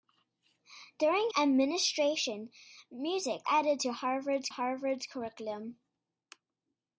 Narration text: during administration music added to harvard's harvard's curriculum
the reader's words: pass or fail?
pass